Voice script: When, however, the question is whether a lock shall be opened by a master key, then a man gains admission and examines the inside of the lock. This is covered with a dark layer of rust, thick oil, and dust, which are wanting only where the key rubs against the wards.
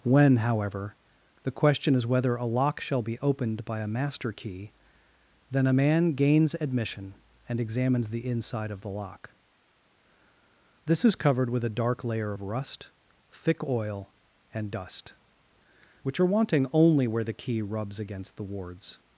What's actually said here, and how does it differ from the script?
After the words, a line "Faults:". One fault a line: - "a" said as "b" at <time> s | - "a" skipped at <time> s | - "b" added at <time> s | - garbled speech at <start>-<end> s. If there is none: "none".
When, however, the question is whether a lock shall be opened by a master key, then a man gains admission and examines the inside of the lock. This is covered with a dark layer of rust, thick oil, and dust, which are wanting only where the key rubs against the wards.
Faults:
none